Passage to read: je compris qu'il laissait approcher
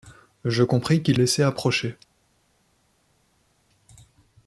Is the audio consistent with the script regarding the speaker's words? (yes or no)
yes